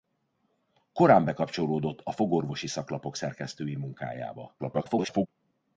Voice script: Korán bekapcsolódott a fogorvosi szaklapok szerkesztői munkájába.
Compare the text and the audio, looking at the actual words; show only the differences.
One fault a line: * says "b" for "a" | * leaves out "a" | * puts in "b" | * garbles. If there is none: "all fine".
* garbles